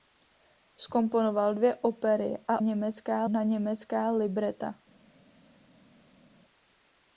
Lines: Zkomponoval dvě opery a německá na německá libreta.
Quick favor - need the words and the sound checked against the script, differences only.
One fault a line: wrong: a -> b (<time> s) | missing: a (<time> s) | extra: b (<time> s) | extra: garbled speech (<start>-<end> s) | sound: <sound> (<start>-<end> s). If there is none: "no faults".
no faults